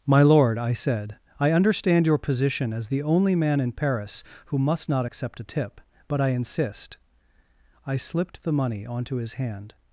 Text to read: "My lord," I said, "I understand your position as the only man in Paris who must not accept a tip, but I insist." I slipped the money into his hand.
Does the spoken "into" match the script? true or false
false